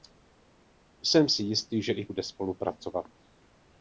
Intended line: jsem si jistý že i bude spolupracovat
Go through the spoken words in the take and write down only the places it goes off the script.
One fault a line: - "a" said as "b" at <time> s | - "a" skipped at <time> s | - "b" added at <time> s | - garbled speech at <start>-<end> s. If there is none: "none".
none